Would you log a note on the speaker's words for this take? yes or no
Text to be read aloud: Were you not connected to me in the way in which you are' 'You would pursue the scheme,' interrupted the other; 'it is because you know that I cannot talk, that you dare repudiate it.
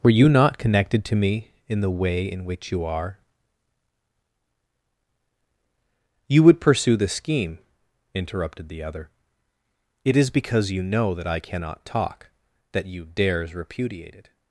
yes